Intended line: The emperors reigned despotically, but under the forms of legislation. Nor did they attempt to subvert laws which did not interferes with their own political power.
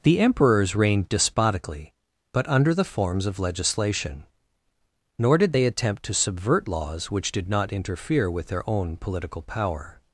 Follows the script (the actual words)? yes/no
no